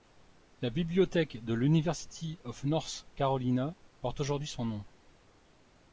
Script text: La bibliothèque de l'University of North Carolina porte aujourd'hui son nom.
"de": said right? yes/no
yes